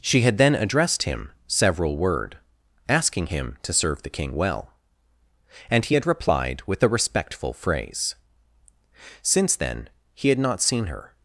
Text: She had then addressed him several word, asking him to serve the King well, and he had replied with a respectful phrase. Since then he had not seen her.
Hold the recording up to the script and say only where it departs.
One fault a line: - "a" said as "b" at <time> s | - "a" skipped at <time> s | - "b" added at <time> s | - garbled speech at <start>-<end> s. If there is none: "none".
none